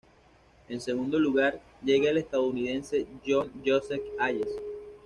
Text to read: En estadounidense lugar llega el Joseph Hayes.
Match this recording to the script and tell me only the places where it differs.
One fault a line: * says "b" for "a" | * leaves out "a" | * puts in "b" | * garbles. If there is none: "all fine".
* says "segundo" for "estadounidense"
* puts in "estadounidense John"